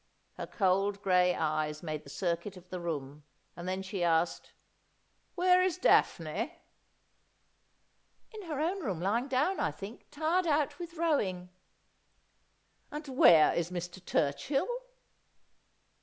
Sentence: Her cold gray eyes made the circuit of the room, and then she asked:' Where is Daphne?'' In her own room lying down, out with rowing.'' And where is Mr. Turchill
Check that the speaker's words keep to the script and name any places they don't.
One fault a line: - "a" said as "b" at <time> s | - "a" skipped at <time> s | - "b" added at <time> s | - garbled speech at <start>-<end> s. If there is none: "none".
- "I think tired" added at 9.6 s